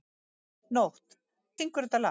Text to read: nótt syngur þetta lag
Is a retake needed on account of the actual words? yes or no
no